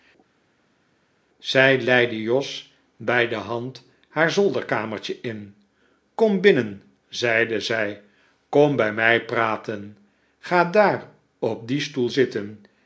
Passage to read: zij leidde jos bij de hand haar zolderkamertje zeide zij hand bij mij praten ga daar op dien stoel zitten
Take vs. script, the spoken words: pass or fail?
fail